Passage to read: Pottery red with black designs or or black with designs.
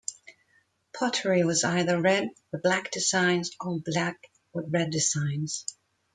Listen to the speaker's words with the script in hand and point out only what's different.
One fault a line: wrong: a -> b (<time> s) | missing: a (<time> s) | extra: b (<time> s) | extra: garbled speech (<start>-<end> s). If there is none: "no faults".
extra: was either (1.4 s)
missing: or (3.8 s)
extra: red (4.7 s)